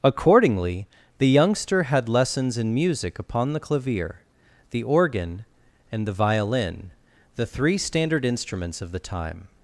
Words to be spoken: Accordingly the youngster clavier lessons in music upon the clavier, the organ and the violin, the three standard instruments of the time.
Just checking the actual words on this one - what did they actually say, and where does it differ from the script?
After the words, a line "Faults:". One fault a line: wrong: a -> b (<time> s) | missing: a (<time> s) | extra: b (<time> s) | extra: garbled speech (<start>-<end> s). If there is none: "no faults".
Accordingly the youngster had lessons in music upon the clavier, the organ and the violin, the three standard instruments of the time.
Faults:
wrong: clavier -> had (1.8 s)